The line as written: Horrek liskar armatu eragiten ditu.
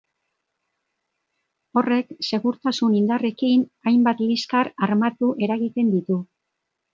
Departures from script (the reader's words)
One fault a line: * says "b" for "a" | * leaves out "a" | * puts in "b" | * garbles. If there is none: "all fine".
* puts in "segurtasun indarrekin hainbat"